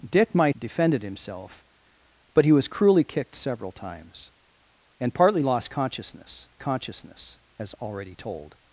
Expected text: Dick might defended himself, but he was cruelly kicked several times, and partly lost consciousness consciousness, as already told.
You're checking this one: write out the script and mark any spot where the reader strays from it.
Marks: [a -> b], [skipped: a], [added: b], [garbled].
Dick might defended himself, but he was cruelly kicked several times, and partly lost consciousness consciousness, as already told.